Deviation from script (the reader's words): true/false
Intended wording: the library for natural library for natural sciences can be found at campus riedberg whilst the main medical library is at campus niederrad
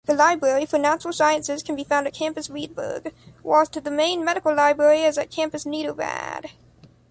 true